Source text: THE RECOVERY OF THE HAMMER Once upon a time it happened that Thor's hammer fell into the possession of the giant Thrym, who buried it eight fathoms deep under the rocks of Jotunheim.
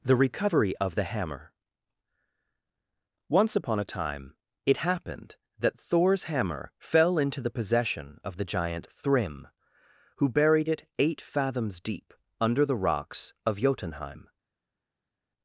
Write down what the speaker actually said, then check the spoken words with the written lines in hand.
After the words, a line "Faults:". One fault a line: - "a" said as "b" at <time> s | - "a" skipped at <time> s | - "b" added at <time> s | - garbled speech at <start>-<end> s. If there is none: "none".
THE RECOVERY OF THE HAMMER Once upon a time it happened that Thor's hammer fell into the possession of the giant Thrym, who buried it eight fathoms deep under the rocks of Jotunheim.
Faults:
none